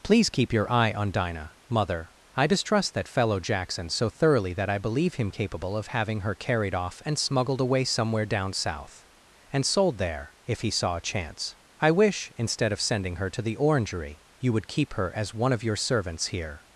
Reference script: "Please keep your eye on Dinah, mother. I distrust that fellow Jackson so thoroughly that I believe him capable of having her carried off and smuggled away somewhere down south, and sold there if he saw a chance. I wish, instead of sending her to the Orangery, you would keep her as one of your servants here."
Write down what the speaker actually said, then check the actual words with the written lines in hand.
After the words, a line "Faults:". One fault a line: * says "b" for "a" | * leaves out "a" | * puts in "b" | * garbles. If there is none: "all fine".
"Please keep your eye on Dinah, mother. I distrust that fellow Jackson so thoroughly that I believe him capable of having her carried off and smuggled away somewhere down south, and sold there if he saw a chance. I wish, instead of sending her to the Orangery, you would keep her as one of your servants here."
Faults:
all fine